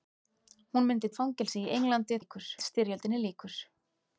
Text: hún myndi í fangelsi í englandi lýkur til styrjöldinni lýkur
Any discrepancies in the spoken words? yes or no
no